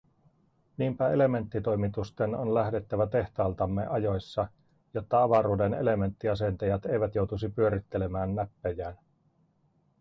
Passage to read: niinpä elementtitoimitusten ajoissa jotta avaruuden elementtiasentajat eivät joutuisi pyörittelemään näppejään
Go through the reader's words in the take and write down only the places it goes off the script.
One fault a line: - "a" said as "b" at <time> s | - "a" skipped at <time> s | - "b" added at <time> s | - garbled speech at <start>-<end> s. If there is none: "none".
- "on lähdettävä tehtaaltamme" added at 2.4 s